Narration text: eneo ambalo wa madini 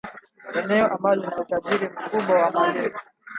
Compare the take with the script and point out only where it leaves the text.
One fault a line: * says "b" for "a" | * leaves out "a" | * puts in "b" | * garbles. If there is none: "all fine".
* puts in "lina utajiri mkubwa"